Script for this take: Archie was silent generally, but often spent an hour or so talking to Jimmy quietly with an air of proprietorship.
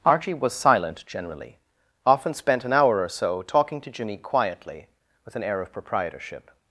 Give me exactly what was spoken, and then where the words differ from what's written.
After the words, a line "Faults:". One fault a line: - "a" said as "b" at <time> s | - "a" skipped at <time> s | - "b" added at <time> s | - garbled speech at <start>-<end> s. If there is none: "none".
Archie was silent generally, often spent an hour or so talking to Jimmy quietly with an air of proprietorship.
Faults:
- "but" skipped at 1.6 s